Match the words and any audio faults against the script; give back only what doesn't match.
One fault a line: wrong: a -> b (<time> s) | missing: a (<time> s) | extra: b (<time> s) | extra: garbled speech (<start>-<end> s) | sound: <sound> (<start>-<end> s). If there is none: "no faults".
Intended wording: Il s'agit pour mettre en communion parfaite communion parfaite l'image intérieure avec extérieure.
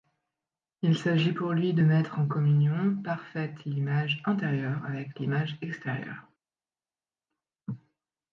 extra: lui de (1.5 s)
missing: communion parfaite (3.6 s)
extra: l'image (5.2 s)